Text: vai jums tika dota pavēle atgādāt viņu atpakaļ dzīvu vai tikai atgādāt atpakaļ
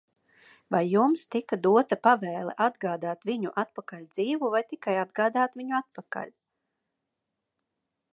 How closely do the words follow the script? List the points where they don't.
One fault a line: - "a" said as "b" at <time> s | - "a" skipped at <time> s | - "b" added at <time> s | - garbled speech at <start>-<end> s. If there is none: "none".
- "viņu" added at 5.6 s